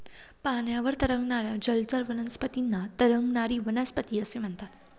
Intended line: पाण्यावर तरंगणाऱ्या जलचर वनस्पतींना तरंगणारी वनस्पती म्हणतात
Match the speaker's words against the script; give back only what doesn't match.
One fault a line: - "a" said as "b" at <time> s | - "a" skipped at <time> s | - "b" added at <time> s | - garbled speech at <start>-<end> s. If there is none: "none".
- "असे" added at 4.2 s